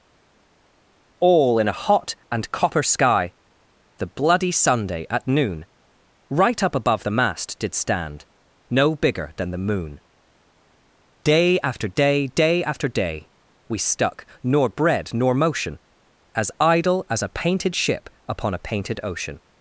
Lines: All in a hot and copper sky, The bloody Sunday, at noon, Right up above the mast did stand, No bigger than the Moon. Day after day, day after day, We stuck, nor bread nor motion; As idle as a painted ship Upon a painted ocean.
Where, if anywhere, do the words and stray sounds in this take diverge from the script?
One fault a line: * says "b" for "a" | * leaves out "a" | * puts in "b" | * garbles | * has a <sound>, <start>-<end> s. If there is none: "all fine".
all fine